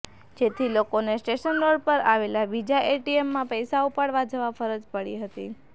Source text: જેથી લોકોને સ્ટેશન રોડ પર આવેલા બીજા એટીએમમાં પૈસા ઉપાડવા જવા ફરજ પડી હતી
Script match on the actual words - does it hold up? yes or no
yes